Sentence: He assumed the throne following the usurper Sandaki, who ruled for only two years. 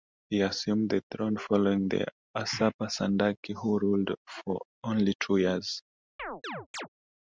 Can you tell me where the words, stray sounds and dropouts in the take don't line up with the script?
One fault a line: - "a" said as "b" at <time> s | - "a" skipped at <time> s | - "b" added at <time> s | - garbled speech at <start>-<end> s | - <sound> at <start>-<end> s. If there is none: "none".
- chirp at 6.2-6.9 s